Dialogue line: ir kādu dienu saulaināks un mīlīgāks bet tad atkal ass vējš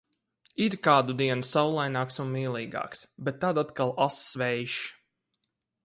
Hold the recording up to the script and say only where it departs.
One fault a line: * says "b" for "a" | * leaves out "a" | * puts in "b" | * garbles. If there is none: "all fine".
all fine